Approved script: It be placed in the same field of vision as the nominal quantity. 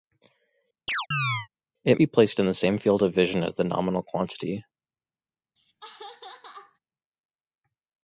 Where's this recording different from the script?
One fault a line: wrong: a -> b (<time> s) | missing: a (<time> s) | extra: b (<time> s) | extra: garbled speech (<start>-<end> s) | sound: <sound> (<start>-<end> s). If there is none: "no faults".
sound: chirp (0.9-1.5 s)
sound: laugh (5.6-6.8 s)